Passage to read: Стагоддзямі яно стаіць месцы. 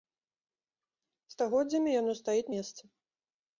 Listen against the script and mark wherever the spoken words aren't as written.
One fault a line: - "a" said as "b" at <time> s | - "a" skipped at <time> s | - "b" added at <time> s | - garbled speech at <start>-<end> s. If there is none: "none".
none